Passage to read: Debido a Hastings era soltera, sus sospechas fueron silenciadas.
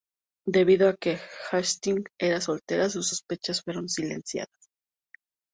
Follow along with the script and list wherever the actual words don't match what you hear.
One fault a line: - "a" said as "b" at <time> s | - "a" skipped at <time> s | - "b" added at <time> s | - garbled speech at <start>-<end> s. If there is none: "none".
- "que" added at 0.9 s